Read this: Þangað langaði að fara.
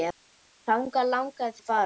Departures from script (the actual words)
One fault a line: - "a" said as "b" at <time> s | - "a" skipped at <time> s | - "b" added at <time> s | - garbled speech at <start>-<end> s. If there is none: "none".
none